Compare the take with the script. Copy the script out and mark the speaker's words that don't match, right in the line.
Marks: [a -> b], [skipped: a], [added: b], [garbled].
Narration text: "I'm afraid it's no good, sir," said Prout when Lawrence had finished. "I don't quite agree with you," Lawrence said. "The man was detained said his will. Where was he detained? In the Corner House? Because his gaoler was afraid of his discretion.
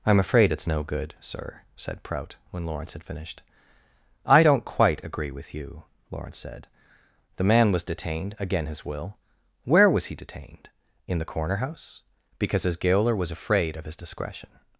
"I'm afraid it's no good, sir," said Prout when Lawrence had finished. "I don't quite agree with you," Lawrence said. "The man was detained [said -> again] his will. Where was he detained? In the Corner House? Because his gaoler was afraid of his discretion.